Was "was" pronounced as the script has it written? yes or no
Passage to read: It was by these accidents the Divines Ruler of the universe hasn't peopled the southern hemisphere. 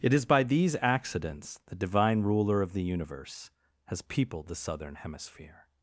no